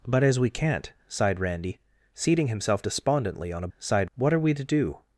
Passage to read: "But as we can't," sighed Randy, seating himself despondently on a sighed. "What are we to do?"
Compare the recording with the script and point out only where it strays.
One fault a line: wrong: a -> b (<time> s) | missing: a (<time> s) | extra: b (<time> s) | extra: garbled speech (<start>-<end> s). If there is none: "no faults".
no faults